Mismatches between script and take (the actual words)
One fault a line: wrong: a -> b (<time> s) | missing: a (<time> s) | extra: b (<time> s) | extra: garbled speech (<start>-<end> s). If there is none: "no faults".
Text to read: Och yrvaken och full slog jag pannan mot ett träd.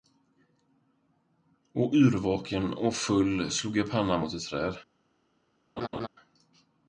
no faults